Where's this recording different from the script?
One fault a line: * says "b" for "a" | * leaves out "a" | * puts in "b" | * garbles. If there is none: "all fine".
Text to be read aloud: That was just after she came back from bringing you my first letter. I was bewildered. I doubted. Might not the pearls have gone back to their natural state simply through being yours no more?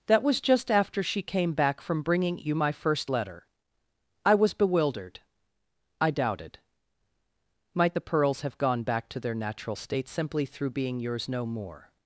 * leaves out "not"